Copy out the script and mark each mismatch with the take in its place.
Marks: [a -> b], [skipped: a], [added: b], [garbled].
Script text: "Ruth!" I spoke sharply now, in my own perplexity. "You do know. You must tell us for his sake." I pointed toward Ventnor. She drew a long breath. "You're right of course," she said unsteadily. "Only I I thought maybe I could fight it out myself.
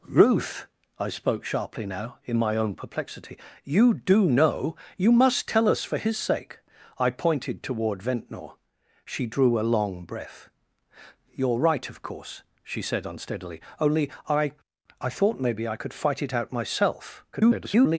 "Ruth!" I spoke sharply now, in my own perplexity. "You do know. You must tell us for his sake." I pointed toward Ventnor. She drew a long breath. "You're right of course," she said unsteadily. "Only I I thought maybe I could fight it out myself. [garbled]